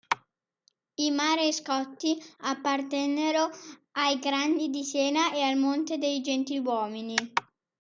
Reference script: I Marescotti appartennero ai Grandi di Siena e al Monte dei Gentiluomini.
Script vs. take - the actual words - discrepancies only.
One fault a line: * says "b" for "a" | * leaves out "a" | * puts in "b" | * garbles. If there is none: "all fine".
all fine